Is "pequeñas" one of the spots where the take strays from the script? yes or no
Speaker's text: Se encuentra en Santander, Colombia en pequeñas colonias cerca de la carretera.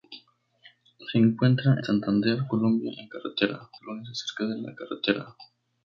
yes